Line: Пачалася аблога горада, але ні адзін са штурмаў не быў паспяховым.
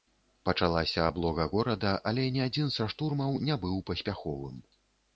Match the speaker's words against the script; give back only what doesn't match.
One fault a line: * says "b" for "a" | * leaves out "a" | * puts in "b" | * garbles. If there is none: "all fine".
all fine